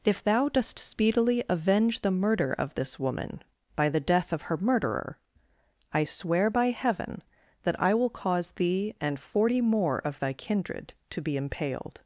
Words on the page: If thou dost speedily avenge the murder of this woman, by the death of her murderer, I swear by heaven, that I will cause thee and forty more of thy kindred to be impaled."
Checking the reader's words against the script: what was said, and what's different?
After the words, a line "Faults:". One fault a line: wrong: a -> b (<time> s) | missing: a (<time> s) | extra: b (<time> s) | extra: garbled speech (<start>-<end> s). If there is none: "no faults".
If thou dost speedily avenge the murder of this woman, by the death of her murderer, I swear by heaven, that I will cause thee and forty more of thy kindred to be impaled."
Faults:
no faults